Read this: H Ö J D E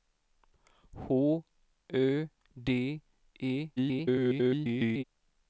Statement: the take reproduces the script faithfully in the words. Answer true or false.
false